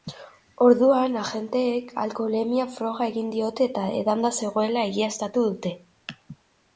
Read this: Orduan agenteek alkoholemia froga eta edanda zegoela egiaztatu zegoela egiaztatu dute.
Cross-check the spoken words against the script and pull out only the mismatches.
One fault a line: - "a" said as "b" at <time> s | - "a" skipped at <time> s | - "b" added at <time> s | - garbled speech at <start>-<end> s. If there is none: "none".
- "egin diote" added at 3.1 s
- "zegoela egiaztatu" skipped at 5.4 s